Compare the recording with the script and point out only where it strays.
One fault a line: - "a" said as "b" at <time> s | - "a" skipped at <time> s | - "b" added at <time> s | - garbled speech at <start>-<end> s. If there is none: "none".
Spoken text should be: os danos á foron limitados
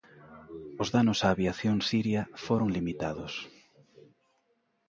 - "aviación siria" added at 1.3 s